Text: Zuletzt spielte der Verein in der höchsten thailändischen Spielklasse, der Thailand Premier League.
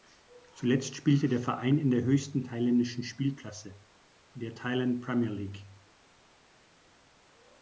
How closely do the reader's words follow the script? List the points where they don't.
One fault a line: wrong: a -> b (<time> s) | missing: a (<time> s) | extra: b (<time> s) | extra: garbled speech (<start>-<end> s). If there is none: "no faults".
no faults